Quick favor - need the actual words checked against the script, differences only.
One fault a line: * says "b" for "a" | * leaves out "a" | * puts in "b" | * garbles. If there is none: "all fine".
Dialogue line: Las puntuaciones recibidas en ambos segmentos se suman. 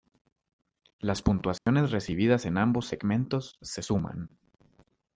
all fine